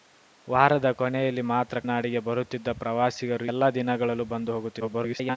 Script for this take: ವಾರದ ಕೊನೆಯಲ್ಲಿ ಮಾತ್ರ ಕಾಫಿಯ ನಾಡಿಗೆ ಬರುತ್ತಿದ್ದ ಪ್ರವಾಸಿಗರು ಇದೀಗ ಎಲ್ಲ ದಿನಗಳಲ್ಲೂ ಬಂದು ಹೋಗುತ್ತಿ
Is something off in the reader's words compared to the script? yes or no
yes